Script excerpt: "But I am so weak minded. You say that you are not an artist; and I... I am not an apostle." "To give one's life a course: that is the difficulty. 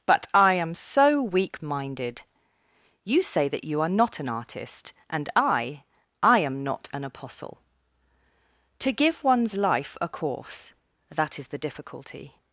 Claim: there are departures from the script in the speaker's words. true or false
false